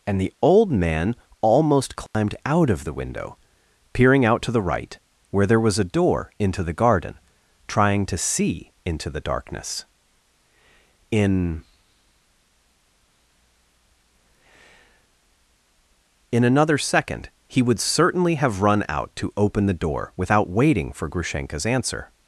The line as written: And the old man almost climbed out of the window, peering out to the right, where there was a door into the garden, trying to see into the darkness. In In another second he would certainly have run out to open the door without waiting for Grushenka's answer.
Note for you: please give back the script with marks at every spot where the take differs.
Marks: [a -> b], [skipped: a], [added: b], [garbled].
And the old man almost climbed out of the window, peering out to the right, where there was a door into the garden, trying to see into the darkness. In In another second he would certainly have run out to open the door without waiting for Grushenka's answer.